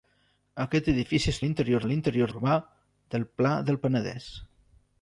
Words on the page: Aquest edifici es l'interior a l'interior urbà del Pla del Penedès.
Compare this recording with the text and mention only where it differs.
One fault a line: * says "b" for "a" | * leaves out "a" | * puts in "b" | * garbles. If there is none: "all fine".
all fine